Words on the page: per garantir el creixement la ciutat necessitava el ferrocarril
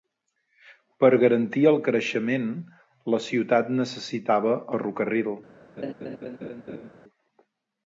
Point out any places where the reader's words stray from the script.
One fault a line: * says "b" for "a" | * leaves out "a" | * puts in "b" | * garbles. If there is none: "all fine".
* leaves out "el"